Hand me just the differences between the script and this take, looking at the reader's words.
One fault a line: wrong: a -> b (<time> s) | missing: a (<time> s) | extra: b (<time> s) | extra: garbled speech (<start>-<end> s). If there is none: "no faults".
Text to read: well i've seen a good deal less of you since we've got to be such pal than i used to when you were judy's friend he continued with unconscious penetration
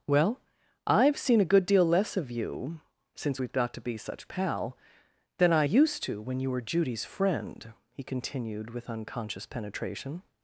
no faults